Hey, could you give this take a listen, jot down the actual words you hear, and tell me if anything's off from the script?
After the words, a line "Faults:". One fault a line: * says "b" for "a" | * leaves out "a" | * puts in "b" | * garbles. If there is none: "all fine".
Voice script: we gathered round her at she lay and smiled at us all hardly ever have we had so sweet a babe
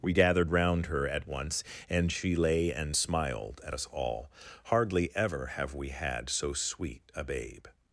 we gathered round her at once and she lay and smiled at us all hardly ever have we had so sweet a babe
Faults:
* puts in "once and"